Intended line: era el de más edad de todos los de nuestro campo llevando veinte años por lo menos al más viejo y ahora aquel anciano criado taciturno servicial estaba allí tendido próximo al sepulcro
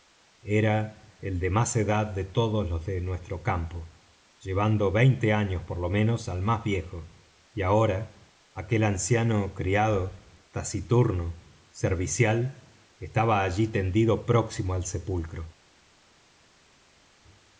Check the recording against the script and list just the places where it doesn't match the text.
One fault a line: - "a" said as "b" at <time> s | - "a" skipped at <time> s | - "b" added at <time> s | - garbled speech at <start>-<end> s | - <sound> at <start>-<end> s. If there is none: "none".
none